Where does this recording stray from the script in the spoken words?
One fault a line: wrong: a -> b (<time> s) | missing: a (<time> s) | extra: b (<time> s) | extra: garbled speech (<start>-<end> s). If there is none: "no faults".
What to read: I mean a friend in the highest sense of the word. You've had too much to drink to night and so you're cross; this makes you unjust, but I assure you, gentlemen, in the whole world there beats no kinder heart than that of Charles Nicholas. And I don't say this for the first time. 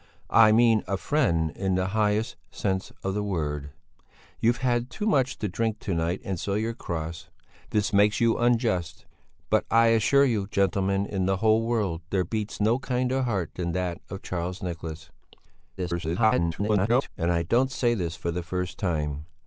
extra: garbled speech (15.8-17.1 s)